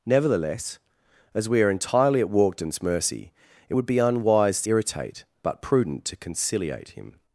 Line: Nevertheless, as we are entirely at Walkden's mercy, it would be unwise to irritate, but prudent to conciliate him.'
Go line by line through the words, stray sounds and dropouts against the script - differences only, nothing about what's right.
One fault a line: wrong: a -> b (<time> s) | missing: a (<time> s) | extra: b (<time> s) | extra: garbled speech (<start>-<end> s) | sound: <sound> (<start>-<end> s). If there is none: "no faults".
missing: to (4.6 s)